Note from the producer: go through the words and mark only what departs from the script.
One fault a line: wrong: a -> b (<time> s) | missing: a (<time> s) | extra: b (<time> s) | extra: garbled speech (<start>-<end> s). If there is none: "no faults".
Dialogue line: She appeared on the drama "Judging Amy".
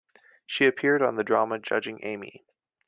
no faults